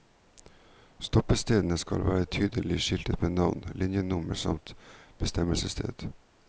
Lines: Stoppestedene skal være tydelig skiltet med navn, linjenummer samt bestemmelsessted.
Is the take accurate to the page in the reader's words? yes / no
yes